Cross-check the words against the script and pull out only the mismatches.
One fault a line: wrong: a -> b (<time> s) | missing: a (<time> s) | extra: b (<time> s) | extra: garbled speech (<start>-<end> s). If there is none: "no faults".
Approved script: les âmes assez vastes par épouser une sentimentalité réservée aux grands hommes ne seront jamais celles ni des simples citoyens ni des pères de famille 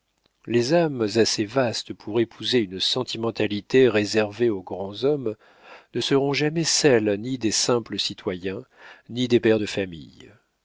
wrong: par -> pour (1.9 s)